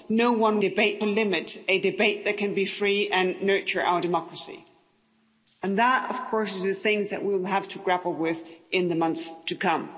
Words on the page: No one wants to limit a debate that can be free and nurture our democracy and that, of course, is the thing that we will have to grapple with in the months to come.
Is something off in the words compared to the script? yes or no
yes